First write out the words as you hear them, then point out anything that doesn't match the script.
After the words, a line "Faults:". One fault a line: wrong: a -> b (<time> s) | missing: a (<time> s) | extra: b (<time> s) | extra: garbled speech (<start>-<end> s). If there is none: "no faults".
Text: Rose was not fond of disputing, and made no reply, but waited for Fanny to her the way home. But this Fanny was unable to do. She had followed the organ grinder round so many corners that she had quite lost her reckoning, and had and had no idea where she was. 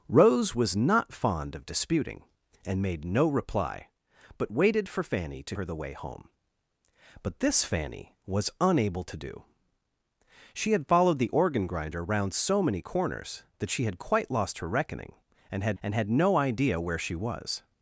Rose was not fond of disputing, and made no reply, but waited for Fanny to her the way home. But this Fanny was unable to do. She had followed the organ grinder round so many corners that she had quite lost her reckoning, and had and had no idea where she was.
Faults:
no faults